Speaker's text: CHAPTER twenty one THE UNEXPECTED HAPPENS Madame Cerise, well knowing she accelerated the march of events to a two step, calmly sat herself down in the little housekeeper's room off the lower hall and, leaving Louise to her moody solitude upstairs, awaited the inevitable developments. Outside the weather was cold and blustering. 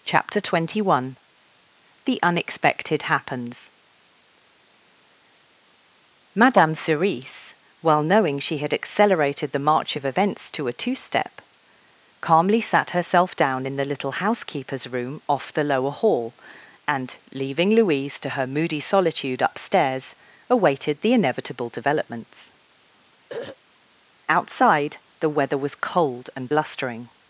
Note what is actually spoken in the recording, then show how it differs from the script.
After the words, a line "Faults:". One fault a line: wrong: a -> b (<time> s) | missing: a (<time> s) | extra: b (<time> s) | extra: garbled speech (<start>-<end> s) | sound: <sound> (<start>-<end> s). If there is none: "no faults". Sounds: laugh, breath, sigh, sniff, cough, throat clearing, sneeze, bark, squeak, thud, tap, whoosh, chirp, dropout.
CHAPTER twenty one THE UNEXPECTED HAPPENS Madame Cerise, well knowing she had accelerated the march of events to a two step, calmly sat herself down in the little housekeeper's room off the lower hall and, leaving Louise to her moody solitude upstairs, awaited the inevitable developments. Outside the weather was cold and blustering.
Faults:
extra: had (8.6 s)
sound: throat clearing (23.3-23.6 s)